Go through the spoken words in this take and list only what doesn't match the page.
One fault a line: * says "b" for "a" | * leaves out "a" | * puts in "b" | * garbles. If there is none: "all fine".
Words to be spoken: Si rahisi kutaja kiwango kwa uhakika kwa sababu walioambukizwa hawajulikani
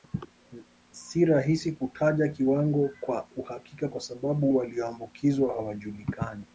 all fine